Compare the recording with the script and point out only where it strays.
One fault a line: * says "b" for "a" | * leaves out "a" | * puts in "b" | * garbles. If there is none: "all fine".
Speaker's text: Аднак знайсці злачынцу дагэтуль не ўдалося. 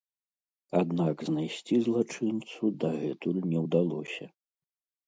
all fine